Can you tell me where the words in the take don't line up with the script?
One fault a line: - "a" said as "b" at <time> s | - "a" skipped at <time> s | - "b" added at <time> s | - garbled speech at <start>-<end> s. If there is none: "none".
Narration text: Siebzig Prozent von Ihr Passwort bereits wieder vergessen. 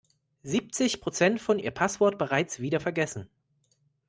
none